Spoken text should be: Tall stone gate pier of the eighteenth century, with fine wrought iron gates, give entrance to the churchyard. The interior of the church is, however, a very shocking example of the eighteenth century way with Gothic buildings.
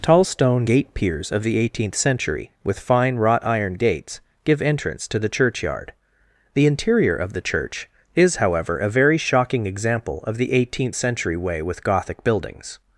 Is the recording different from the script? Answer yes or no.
yes